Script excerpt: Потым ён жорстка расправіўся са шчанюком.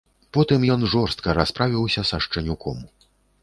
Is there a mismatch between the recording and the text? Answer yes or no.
no